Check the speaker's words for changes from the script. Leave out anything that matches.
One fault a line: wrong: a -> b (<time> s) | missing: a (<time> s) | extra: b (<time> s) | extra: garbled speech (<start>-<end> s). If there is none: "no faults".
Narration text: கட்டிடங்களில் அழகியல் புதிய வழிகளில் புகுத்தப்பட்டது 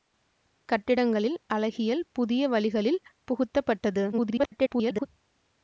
extra: garbled speech (4.1-5.1 s)